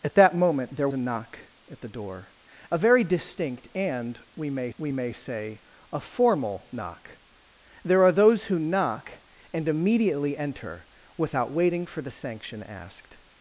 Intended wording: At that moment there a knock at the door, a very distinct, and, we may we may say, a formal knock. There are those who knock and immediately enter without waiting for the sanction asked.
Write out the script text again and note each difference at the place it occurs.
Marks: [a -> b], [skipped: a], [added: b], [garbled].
At that moment there a knock at the door, a very distinct, and, we may we may say, a formal knock. There are those who knock and immediately enter without waiting for the sanction asked.